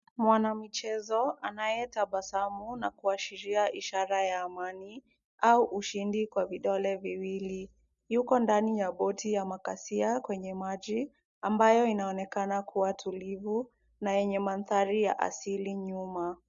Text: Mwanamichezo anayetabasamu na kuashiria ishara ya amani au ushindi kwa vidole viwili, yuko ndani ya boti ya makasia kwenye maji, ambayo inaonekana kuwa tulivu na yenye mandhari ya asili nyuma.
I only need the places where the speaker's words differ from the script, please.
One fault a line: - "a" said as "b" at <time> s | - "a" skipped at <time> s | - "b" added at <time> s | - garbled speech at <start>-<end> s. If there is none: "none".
none